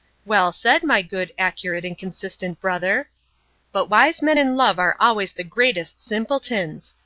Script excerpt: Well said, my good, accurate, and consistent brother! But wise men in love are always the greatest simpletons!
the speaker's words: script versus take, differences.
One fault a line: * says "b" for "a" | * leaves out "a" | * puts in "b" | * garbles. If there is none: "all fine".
all fine